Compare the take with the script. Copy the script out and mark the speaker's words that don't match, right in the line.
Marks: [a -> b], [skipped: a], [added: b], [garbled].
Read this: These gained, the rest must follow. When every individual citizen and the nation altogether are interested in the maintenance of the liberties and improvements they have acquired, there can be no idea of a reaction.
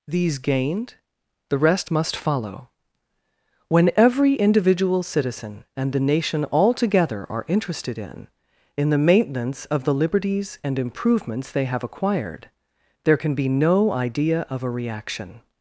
These gained, the rest must follow. When every individual citizen and the nation altogether are interested in [added: in] the maintenance of the liberties and improvements they have acquired, there can be no idea of a reaction.